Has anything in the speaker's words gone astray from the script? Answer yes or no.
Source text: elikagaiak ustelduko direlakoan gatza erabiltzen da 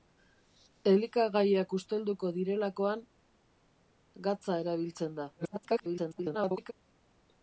yes